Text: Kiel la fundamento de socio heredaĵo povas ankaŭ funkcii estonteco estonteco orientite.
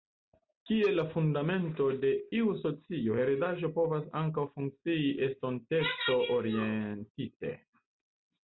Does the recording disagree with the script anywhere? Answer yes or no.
yes